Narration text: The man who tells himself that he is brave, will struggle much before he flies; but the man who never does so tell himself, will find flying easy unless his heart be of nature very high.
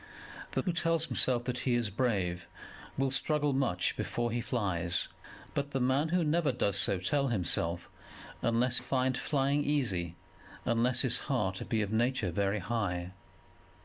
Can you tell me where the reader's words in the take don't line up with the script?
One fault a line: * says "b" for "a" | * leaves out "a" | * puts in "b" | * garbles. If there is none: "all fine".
* leaves out "man"
* says "unless" for "will"